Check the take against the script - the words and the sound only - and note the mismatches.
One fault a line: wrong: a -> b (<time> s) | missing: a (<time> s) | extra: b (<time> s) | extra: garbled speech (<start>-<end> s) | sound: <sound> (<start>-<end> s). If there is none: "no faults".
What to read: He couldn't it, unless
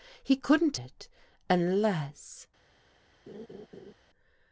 sound: laugh (3.3-3.9 s)